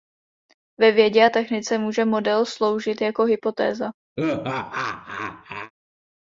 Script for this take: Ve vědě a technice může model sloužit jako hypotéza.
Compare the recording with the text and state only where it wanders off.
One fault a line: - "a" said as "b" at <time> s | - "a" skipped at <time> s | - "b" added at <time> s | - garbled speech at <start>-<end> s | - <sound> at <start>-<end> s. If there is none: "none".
- laugh at 4.2-5.7 s